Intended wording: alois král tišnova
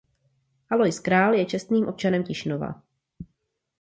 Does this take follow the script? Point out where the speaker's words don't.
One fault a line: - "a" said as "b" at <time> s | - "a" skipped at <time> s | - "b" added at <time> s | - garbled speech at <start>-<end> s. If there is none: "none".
- "je čestným občanem" added at 1.3 s